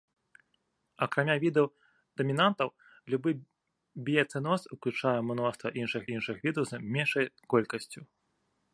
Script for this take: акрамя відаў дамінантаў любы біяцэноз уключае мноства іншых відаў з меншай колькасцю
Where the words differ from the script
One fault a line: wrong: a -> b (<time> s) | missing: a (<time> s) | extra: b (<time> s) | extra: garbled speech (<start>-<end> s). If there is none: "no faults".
extra: іншых (6.2 s)